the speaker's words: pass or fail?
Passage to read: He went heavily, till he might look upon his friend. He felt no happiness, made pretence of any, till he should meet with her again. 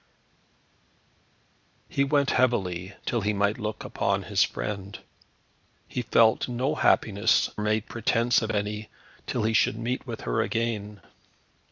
pass